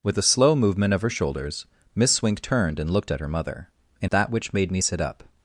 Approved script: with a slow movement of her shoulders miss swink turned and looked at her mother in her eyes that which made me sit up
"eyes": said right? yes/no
no